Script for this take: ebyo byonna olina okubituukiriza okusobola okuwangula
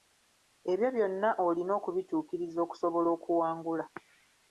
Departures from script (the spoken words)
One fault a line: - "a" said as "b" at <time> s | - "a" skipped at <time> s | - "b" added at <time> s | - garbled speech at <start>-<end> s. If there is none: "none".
none